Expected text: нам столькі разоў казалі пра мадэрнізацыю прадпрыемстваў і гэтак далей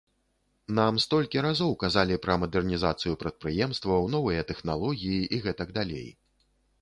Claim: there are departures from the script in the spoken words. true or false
true